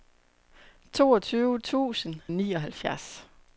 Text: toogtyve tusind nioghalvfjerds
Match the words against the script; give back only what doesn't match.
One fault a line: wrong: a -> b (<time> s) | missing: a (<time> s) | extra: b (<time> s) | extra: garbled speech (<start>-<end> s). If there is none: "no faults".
no faults